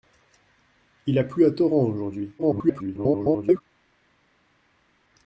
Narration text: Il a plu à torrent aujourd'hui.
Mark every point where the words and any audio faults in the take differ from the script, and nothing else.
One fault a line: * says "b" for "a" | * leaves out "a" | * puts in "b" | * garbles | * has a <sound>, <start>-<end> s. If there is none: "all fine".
* garbles